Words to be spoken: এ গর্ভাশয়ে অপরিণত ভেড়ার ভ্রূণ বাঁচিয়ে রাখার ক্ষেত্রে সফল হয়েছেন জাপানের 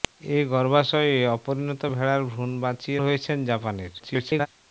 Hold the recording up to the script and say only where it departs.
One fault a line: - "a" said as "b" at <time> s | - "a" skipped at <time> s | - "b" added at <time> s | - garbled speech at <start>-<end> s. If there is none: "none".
- "রাখার ক্ষেত্রে সফল" skipped at 3.0 s
- garbled speech at 4.0-4.5 s